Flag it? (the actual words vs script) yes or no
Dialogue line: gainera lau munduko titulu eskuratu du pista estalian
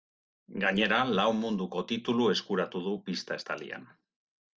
no